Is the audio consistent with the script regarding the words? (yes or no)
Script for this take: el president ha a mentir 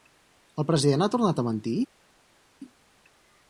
no